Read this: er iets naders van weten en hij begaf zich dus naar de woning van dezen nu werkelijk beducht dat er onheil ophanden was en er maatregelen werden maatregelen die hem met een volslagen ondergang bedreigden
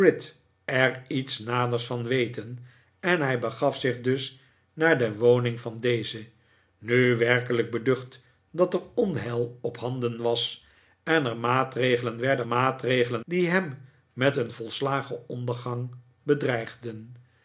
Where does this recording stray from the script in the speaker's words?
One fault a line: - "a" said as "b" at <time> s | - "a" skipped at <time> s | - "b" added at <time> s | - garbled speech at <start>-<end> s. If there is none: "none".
none